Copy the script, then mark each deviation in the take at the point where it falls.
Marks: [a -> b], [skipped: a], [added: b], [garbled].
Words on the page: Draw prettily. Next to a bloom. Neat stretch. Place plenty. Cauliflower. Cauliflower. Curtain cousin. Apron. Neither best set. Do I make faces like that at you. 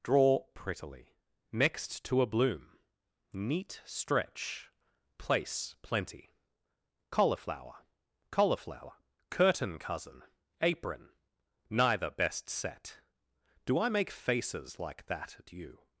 Draw prettily. Next to a bloom. Neat stretch. Place plenty. Cauliflower. Cauliflower. Curtain cousin. Apron. Neither best set. Do I make faces like that at you.